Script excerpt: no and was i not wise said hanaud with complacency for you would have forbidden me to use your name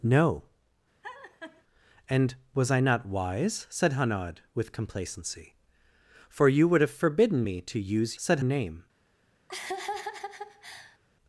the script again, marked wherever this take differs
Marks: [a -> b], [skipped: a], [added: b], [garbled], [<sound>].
no [laugh] and was i not wise said hanaud with complacency for you would have forbidden me to use [your -> said] name [laugh]